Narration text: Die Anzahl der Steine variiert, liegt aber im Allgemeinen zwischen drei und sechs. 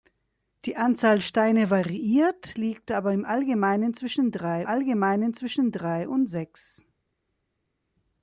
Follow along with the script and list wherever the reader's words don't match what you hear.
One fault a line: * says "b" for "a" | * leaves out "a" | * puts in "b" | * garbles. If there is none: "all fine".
* leaves out "der"
* puts in "Allgemeinen zwischen drei"